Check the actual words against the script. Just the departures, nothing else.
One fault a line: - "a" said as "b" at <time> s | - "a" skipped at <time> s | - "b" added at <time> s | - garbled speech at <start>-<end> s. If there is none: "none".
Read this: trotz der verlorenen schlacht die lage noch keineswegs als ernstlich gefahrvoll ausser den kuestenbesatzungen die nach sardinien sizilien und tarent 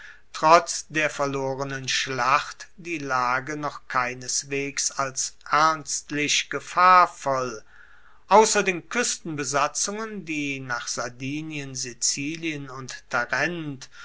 none